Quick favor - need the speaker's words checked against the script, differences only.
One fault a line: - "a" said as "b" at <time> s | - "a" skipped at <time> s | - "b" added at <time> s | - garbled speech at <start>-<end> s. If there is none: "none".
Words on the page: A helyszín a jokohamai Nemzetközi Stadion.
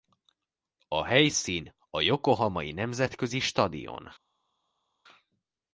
none